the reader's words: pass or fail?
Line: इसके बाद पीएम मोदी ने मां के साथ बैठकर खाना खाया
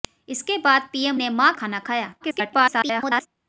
fail